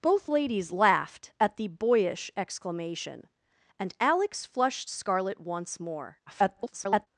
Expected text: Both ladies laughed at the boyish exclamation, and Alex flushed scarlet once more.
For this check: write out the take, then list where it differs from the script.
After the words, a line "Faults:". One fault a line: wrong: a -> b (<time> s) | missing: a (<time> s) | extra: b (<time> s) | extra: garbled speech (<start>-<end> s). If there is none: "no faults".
Both ladies laughed at the boyish exclamation, and Alex flushed scarlet once more. [garbled]
Faults:
extra: garbled speech (6.3-7.1 s)